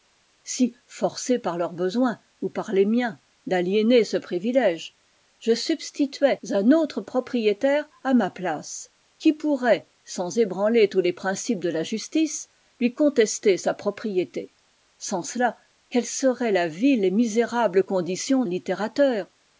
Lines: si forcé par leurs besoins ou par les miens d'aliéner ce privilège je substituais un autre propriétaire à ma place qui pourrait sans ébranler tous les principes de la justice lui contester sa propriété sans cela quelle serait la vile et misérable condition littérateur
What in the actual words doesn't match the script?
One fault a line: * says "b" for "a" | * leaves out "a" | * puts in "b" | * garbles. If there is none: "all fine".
all fine